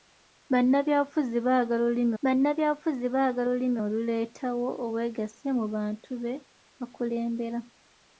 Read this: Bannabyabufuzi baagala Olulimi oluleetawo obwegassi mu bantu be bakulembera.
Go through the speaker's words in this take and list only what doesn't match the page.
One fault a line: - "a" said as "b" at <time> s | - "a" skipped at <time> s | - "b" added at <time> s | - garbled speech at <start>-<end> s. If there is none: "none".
- "bannabyabufuzi baagala Olulimi" added at 2.2 s